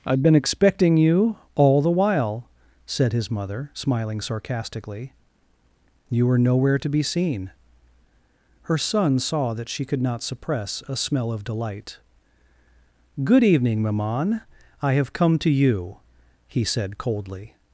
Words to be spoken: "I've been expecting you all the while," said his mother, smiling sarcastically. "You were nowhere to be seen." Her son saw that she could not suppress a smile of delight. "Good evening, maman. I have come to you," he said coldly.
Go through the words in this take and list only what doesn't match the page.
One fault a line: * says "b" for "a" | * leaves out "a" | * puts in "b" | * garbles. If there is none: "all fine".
* says "smell" for "smile"